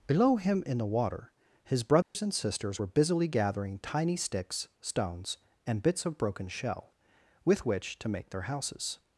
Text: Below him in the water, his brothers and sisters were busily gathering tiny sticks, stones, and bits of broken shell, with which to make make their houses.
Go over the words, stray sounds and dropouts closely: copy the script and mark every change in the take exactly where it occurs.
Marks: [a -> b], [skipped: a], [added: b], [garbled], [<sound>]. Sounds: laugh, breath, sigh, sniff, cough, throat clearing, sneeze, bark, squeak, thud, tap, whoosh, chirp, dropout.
Below him in the water, his brothers [dropout] and sisters were busily gathering tiny sticks, stones, and bits of broken shell, with which to make [skipped: make] their houses.